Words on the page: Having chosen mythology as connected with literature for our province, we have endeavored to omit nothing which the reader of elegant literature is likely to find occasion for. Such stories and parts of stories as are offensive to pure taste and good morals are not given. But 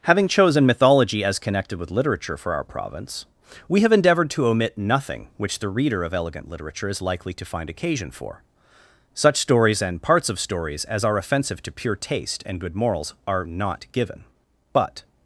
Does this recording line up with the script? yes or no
yes